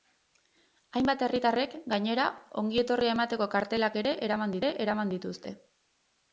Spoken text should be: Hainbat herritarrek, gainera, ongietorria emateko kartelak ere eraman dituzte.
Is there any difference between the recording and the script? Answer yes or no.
yes